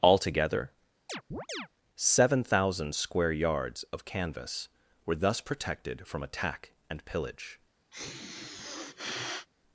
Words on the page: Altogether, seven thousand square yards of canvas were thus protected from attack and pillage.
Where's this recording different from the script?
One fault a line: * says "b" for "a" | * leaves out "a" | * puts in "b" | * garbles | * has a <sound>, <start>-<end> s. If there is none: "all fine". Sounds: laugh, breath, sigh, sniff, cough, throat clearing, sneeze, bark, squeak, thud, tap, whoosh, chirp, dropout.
* has a chirp, 1.1-1.7 s
* has a sniff, 7.9-9.5 s